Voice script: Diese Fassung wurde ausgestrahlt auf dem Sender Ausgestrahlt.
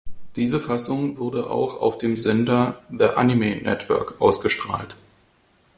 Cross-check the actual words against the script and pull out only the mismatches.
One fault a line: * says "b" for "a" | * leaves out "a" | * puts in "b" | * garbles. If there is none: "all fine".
* says "auch" for "ausgestrahlt"
* puts in "The Anime Network"